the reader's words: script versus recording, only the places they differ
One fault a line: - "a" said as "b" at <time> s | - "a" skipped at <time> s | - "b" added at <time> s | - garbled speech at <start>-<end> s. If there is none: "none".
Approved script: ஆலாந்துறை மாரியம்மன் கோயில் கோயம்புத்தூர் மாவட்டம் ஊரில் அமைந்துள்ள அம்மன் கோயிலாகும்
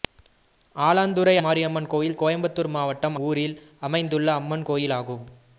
none